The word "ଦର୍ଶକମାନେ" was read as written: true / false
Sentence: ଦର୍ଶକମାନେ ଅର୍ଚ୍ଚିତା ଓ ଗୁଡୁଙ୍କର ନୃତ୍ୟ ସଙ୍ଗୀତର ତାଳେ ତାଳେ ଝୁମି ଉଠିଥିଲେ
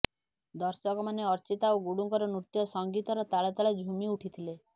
true